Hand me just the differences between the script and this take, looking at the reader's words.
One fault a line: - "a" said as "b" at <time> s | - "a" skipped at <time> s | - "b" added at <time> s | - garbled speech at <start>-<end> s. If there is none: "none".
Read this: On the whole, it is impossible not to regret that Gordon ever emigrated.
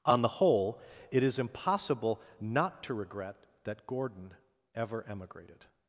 none